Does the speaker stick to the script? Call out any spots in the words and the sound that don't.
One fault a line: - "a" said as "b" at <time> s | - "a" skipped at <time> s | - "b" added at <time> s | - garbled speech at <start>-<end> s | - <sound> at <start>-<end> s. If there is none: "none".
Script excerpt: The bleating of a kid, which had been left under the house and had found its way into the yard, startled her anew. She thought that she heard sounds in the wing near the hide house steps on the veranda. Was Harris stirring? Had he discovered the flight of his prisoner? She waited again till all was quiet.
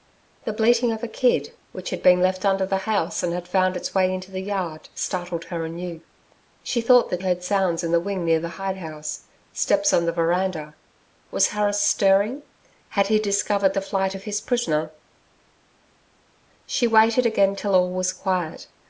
- "she" skipped at 7.2 s